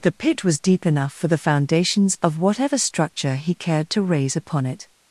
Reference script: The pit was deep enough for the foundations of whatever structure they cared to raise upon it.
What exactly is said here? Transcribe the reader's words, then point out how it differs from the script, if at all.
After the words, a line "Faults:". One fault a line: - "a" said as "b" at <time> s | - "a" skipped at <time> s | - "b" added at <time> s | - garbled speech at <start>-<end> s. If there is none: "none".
The pit was deep enough for the foundations of whatever structure he cared to raise upon it.
Faults:
- "they" said as "he" at 3.4 s